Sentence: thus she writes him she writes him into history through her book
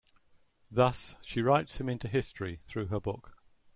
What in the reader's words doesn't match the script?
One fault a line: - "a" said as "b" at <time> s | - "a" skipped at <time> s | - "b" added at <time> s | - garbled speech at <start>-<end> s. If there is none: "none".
- "she writes him" skipped at 1.9 s